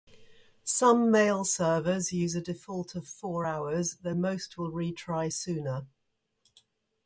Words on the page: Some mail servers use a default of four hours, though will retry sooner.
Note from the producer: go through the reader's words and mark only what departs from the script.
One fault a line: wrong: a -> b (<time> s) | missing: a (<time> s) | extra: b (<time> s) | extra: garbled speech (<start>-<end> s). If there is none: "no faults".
extra: most (4.1 s)